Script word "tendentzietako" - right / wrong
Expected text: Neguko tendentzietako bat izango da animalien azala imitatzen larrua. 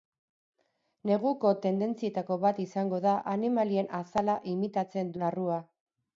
right